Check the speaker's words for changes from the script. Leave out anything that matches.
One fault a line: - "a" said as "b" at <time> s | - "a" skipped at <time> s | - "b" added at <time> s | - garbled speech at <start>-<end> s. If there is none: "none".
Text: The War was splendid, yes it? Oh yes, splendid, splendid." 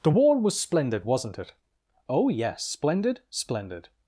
- "yes" said as "wasn't" at 1.0 s